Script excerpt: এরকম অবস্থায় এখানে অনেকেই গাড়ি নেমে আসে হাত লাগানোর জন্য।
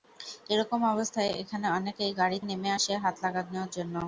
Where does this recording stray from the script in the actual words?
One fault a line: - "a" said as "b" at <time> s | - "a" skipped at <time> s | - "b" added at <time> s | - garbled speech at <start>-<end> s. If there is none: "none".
none